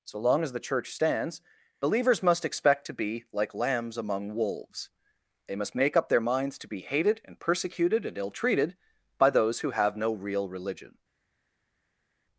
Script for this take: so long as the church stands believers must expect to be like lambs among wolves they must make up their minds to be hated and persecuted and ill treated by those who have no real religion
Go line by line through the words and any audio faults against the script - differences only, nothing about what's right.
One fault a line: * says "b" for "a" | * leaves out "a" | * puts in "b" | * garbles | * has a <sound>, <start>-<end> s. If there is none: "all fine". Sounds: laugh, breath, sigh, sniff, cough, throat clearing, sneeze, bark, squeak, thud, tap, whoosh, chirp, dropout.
all fine